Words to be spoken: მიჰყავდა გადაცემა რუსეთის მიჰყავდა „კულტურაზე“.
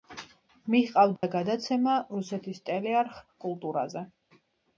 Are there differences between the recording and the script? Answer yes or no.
yes